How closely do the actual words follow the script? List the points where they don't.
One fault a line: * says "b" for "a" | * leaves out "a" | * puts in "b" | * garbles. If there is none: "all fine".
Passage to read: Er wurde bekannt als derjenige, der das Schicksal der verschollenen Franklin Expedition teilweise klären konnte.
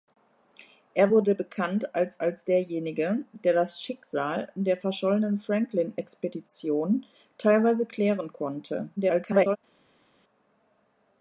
* puts in "als"
* garbles